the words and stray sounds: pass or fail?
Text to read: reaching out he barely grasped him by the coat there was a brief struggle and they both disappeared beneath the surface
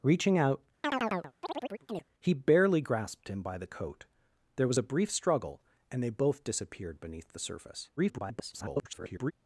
fail